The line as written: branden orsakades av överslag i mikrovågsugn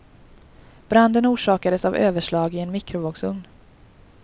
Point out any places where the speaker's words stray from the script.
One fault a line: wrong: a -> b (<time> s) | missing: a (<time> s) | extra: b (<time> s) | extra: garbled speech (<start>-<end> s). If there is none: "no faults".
extra: en (2.6 s)